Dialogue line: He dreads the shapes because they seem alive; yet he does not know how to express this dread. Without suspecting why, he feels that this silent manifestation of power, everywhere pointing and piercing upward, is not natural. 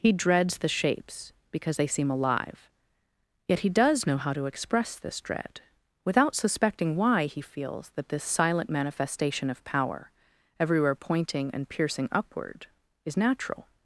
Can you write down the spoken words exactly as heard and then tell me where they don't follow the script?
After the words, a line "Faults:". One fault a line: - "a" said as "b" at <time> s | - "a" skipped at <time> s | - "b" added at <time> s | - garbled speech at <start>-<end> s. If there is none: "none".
He dreads the shapes because they seem alive; yet he does know how to express this dread. Without suspecting why, he feels that this silent manifestation of power, everywhere pointing and piercing upward, is natural.
Faults:
- "not" skipped at 4.1 s
- "not" skipped at 13.2 s